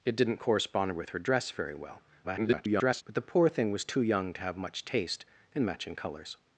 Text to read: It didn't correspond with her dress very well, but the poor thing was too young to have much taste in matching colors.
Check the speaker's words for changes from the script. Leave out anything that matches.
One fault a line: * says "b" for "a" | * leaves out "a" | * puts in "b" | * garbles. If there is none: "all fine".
* garbles